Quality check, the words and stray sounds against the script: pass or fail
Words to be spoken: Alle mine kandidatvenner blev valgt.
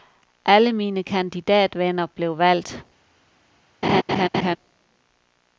fail